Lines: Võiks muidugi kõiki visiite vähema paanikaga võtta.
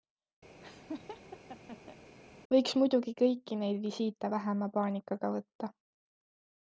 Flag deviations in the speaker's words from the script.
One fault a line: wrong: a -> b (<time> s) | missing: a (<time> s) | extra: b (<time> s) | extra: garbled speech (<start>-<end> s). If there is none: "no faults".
extra: neid (3.6 s)